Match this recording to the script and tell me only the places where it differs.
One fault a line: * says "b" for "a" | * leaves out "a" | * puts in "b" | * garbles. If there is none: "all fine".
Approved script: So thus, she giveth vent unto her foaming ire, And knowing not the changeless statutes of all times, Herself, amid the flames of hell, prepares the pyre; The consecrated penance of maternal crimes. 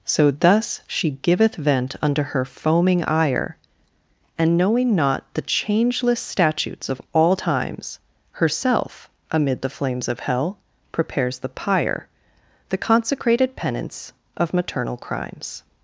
all fine